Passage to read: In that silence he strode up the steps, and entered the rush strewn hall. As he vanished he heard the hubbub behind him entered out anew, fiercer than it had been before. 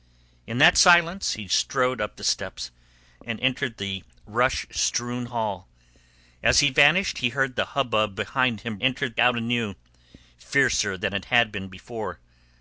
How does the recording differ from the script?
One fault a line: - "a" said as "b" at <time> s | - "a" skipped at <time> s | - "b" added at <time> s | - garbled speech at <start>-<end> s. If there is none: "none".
none